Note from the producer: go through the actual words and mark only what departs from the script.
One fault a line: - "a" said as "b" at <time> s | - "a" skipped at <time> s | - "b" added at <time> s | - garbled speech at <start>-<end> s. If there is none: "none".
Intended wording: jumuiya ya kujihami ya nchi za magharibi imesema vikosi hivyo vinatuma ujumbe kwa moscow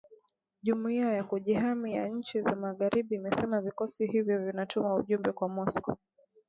none